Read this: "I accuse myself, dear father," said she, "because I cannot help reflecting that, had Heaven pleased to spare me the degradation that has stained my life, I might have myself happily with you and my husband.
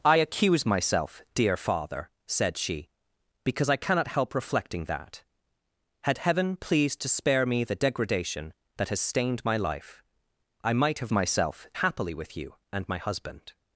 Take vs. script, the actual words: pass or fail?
pass